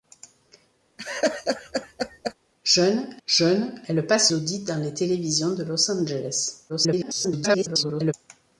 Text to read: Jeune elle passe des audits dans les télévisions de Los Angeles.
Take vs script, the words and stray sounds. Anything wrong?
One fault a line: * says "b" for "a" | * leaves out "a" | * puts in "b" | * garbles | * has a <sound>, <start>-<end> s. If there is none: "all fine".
* has a laugh, 1.0-2.3 s
* puts in "jeune"
* leaves out "des"
* garbles